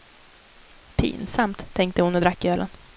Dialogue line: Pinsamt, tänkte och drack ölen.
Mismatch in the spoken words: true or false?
true